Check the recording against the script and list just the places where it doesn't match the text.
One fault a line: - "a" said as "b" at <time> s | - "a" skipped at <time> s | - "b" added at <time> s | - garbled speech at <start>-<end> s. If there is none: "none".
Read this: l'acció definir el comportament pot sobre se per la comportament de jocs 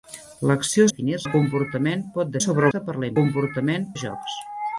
none